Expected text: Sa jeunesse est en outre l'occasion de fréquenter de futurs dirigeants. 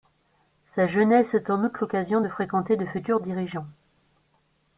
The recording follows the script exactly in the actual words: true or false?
true